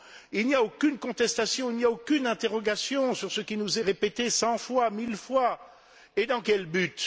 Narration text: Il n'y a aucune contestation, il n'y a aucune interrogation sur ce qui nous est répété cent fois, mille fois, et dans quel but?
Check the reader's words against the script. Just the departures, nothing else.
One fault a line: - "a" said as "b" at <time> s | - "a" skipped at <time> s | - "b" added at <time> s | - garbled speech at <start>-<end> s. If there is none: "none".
none